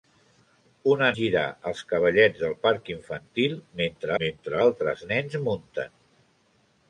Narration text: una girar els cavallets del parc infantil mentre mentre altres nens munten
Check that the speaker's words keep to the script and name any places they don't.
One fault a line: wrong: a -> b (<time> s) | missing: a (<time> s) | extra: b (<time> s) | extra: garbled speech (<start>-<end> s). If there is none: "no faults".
no faults